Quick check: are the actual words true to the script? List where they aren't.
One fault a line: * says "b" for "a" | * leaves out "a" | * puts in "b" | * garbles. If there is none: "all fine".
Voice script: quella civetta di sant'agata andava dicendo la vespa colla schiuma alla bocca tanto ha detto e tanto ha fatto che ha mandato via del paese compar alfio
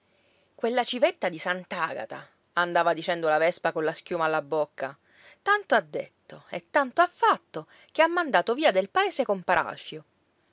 all fine